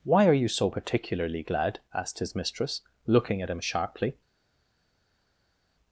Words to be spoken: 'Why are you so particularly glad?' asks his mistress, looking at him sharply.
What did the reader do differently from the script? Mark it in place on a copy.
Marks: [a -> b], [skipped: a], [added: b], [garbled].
'Why are you so particularly glad?' [asks -> asked] his mistress, looking at him sharply.